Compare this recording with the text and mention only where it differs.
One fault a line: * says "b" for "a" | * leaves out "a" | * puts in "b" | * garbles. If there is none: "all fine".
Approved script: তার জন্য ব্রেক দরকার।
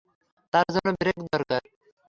all fine